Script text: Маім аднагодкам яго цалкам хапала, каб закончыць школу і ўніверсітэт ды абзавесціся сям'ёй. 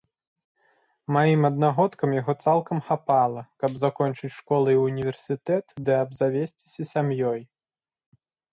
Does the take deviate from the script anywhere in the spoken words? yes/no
no